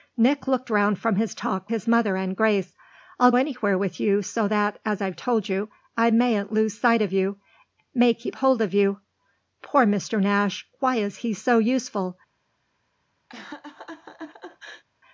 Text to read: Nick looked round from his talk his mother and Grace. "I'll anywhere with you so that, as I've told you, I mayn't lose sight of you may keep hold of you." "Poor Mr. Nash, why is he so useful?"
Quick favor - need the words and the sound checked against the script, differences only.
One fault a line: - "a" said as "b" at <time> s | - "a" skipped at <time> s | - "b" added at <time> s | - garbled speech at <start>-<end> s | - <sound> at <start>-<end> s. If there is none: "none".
- laugh at 13.3-14.8 s